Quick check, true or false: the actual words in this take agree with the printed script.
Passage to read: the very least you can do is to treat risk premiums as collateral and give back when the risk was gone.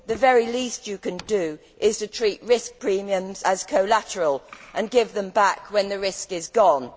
false